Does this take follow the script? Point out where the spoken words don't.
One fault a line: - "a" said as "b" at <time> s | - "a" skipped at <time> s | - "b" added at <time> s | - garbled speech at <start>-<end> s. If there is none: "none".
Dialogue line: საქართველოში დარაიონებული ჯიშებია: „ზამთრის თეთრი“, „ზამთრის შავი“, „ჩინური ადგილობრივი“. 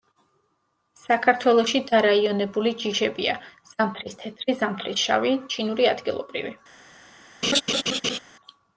none